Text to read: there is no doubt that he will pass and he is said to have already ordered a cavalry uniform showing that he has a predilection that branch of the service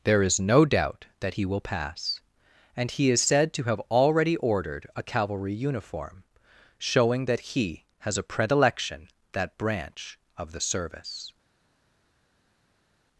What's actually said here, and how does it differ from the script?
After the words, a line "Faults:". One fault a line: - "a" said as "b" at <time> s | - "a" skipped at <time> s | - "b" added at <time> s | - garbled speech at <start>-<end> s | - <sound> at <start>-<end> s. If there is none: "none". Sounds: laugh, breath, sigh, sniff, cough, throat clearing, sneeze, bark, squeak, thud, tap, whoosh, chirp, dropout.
there is no doubt that he will pass and he is said to have already ordered a cavalry uniform showing that he has a predilection that branch of the service
Faults:
none